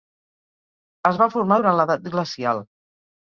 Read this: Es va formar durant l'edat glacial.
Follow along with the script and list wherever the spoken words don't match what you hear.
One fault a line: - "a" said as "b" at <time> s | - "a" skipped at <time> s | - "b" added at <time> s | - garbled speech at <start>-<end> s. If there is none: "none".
none